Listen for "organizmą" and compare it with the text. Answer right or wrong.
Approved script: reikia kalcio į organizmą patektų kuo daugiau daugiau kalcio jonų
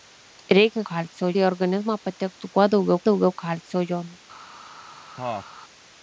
right